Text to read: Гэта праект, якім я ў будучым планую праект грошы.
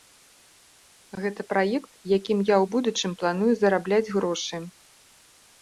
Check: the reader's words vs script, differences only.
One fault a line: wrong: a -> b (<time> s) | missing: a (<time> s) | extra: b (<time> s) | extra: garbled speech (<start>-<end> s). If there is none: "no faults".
wrong: праект -> зарабляць (3.6 s)